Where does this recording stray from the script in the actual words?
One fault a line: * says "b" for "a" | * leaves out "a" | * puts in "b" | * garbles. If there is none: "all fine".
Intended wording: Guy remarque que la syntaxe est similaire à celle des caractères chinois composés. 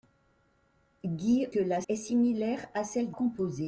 * leaves out "remarque"
* leaves out "syntaxe"
* leaves out "des caractères chinois"